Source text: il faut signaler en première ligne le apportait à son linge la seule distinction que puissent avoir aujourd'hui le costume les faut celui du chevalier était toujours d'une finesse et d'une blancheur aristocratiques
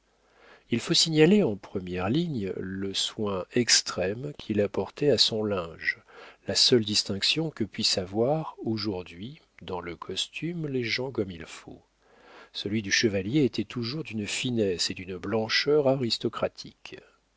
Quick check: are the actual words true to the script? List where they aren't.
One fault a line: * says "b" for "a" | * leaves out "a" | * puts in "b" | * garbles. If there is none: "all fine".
* puts in "soin extrême qu'il"
* puts in "dans"
* puts in "gens comme il"